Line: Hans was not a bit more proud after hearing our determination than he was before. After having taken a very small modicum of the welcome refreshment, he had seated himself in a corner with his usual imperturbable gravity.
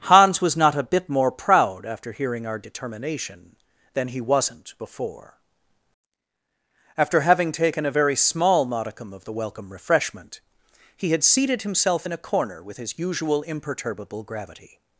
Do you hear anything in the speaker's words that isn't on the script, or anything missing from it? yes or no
yes